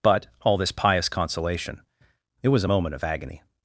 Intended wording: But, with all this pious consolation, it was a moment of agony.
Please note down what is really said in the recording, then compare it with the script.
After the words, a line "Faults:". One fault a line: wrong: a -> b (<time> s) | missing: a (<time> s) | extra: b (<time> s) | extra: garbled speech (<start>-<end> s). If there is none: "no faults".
But, all this pious consolation, it was a moment of agony.
Faults:
missing: with (0.3 s)